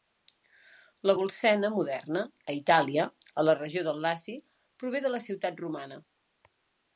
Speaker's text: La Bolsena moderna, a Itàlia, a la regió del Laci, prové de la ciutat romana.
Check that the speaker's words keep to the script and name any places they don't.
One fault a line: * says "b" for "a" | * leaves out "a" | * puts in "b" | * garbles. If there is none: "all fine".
all fine